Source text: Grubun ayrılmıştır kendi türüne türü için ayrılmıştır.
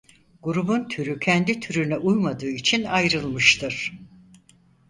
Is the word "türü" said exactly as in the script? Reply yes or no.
no